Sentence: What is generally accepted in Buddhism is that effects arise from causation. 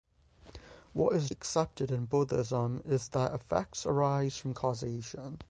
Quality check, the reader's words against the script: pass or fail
fail